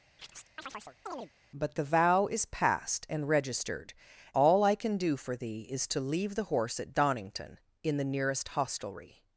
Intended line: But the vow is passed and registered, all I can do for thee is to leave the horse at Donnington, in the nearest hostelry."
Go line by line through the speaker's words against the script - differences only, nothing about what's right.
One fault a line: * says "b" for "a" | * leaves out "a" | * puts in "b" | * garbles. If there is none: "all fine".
all fine